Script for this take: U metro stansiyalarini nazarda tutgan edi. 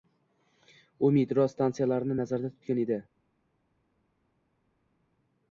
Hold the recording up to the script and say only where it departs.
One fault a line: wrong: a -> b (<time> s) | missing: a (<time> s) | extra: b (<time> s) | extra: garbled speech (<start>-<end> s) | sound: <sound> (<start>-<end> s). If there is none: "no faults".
no faults